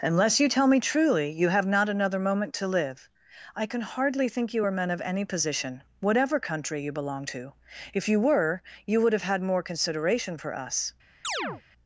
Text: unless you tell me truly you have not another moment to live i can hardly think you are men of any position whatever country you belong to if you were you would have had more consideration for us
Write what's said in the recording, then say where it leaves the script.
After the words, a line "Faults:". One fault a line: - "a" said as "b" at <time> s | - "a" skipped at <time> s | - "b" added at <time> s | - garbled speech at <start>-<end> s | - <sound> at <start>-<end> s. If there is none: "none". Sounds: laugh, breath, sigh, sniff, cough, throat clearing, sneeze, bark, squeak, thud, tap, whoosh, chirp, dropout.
unless you tell me truly you have not another moment to live i can hardly think you are men of any position whatever country you belong to if you were you would have had more consideration for us
Faults:
- chirp at 11.2-11.6 s